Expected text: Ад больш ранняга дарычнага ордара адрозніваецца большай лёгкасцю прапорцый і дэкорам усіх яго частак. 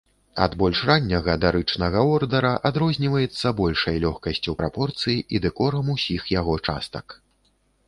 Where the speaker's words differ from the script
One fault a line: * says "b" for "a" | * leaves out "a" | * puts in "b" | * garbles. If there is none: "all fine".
all fine